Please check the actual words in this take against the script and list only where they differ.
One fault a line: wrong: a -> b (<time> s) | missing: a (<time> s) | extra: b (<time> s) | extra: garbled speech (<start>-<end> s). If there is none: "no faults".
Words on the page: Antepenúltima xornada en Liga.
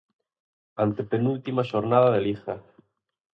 wrong: en -> de (2.1 s)